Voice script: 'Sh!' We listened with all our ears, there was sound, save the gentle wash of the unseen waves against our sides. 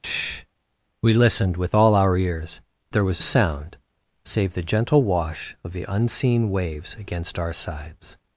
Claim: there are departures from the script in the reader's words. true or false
false